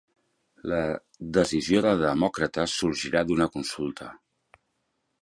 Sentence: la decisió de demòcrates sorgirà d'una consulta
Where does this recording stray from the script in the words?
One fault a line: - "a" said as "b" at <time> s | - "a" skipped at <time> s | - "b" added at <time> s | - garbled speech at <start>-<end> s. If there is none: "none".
none